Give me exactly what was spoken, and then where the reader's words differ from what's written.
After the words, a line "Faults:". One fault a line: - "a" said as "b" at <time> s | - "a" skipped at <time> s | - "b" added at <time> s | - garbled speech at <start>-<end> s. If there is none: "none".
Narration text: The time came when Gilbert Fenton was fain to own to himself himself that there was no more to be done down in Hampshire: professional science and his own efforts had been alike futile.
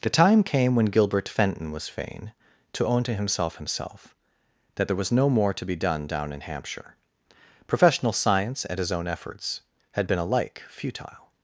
The time came when Gilbert Fenton was fain to own to himself himself that there was no more to be done down in Hampshire: professional science and his own efforts had been alike futile.
Faults:
none